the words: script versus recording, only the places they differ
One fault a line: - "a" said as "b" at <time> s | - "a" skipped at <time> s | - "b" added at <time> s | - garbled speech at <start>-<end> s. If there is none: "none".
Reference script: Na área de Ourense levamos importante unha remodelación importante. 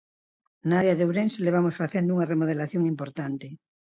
- "importante" said as "facendo" at 1.8 s